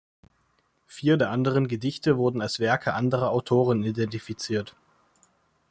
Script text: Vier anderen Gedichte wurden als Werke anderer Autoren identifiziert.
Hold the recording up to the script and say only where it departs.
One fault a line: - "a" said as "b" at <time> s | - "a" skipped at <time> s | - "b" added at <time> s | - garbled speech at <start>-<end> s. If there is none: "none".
- "der" added at 1.2 s